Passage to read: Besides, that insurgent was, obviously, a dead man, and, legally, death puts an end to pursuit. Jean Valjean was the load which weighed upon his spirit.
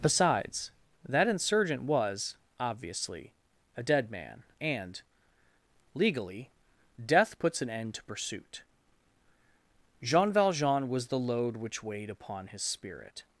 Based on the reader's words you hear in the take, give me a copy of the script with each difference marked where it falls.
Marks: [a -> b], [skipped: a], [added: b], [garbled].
Besides, that insurgent was, obviously, a dead man, and, legally, death puts an end to pursuit. Jean Valjean was the load which weighed upon his spirit.